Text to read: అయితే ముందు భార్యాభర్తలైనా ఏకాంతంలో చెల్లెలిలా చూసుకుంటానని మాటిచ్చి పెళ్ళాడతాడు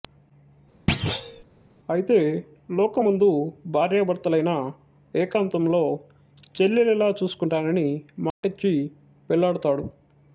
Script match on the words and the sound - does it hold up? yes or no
no